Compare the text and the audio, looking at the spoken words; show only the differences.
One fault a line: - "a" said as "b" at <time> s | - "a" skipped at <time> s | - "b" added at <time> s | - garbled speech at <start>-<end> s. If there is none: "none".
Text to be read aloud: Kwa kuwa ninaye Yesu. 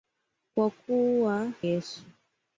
- "ninaye" skipped at 1.5 s